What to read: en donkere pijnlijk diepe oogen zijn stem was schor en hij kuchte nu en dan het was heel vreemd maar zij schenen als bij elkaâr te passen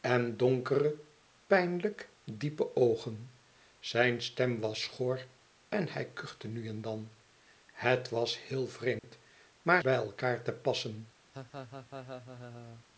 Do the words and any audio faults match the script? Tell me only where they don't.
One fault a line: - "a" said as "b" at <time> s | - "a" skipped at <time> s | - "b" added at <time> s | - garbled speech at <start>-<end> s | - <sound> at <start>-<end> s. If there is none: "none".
- dropout at 9.0-9.0 s
- "zij schenen als" skipped at 9.8 s
- laugh at 11.3-12.9 s